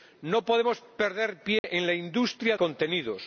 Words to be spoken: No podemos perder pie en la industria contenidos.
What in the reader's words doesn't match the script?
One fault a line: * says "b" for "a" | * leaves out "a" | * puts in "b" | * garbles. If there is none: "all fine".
all fine